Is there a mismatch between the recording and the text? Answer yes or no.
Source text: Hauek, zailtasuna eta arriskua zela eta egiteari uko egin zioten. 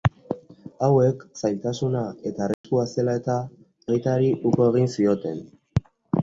no